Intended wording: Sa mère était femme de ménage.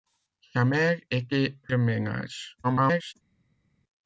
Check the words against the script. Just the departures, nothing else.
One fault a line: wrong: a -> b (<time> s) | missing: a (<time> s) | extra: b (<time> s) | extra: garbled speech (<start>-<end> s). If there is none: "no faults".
missing: femme (1.6 s)
extra: garbled speech (2.6-3.1 s)